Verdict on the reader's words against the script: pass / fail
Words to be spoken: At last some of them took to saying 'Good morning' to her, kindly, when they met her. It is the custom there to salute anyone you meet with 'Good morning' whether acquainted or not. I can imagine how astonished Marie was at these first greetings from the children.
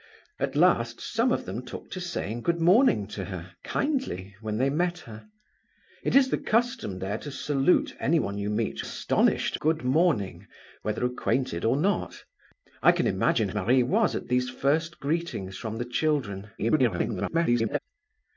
fail